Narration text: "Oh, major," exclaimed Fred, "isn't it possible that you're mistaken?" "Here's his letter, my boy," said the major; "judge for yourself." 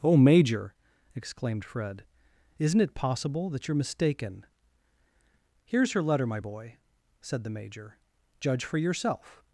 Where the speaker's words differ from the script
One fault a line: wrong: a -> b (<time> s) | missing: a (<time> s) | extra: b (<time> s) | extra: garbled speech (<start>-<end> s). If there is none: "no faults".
wrong: his -> her (5.9 s)